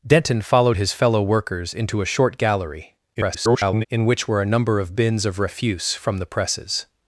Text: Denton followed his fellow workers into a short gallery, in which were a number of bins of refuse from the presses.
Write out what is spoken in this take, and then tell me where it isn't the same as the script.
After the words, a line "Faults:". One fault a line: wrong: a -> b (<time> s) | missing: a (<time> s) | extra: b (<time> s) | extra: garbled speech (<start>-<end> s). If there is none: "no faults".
Denton followed his fellow workers into a short gallery, [garbled] in which were a number of bins of refuse from the presses.
Faults:
extra: garbled speech (3.1-3.9 s)